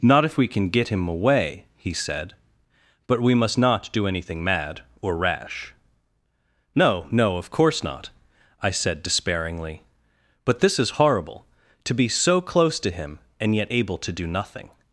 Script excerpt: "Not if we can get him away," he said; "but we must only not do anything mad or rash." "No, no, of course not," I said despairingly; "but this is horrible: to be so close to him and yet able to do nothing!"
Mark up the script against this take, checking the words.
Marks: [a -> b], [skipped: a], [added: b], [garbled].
"Not if we can get him away," he said; "but we must [skipped: only] not do anything mad or rash." "No, no, of course not," I said despairingly; "but this is horrible: to be so close to him and yet able to do nothing!"